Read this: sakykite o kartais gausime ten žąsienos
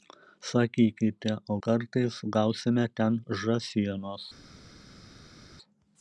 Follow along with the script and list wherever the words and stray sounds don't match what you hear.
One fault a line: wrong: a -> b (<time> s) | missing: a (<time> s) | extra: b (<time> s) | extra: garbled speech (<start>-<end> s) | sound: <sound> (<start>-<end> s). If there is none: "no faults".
no faults